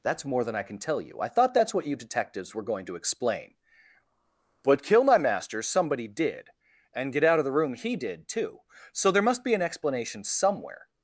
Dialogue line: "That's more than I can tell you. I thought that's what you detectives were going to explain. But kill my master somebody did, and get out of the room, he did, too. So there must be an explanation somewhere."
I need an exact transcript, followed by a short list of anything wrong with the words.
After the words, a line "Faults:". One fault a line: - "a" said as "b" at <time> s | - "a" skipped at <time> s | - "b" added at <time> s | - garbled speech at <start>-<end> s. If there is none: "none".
"That's more than I can tell you. I thought that's what you detectives were going to explain. But kill my master somebody did, and get out of the room, he did, too. So there must be an explanation somewhere."
Faults:
none